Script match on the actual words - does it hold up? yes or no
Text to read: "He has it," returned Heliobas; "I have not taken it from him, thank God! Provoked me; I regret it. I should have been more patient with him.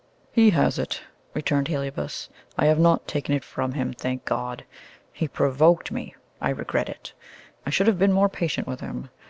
no